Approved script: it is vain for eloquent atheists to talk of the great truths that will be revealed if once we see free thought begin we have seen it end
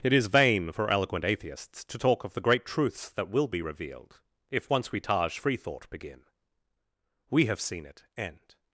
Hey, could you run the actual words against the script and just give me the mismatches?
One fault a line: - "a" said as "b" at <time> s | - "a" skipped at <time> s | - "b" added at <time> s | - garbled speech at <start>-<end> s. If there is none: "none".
- "see" said as "taj" at 5.0 s